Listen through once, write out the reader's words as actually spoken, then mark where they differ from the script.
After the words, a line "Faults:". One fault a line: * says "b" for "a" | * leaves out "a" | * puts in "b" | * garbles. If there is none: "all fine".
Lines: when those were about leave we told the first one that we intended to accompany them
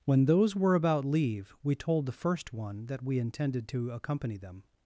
when those were about leave we told the first one that we intended to accompany them
Faults:
all fine